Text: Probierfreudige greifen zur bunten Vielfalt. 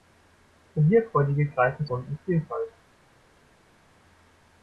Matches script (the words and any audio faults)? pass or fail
fail